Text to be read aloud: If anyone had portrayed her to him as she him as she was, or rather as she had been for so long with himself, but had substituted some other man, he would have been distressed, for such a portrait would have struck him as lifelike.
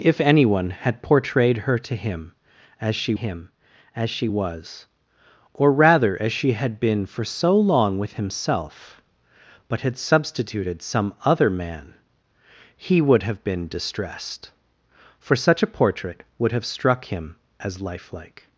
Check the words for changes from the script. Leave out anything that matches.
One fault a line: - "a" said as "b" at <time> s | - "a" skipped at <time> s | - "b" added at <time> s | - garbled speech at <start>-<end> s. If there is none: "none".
none